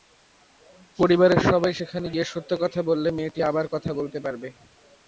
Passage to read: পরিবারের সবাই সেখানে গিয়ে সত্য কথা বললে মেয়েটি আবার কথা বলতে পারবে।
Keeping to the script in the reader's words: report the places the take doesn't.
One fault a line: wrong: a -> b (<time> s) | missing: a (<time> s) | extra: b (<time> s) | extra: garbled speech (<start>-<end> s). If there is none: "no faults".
no faults